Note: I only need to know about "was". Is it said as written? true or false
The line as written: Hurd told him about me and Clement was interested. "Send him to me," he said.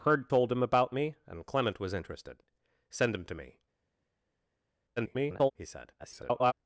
true